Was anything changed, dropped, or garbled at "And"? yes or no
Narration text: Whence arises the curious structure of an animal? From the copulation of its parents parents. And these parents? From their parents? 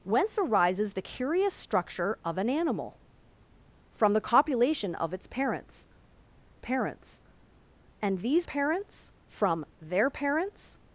no